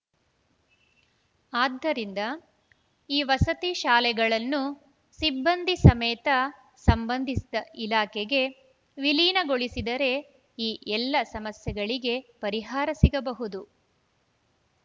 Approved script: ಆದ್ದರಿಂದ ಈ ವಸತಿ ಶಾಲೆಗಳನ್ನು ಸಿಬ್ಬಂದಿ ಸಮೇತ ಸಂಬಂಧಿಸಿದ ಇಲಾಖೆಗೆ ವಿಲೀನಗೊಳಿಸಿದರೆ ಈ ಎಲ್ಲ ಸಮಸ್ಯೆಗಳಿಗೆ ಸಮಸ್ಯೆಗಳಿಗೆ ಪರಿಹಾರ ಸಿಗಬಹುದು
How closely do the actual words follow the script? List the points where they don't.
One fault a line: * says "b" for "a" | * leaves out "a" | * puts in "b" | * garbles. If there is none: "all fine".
* leaves out "ಸಮಸ್ಯೆಗಳಿಗೆ"